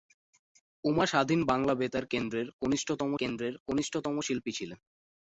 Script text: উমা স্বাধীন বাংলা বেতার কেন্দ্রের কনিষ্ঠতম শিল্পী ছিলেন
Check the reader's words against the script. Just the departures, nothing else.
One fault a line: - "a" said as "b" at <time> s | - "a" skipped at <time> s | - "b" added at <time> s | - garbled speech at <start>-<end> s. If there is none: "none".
- "কেন্দ্রের কনিষ্ঠতম" added at 3.1 s